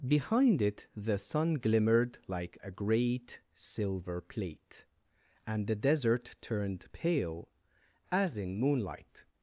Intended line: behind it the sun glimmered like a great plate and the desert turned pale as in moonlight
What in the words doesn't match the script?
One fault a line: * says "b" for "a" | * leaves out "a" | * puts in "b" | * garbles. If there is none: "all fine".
* puts in "silver"